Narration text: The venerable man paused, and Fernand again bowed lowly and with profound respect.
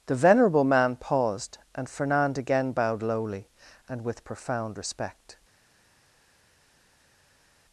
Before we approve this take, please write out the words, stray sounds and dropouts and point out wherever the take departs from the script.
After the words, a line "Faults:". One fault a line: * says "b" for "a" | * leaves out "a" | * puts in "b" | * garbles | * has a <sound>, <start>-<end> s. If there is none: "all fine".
The venerable man paused, and Fernand again bowed lowly and with profound respect.
Faults:
all fine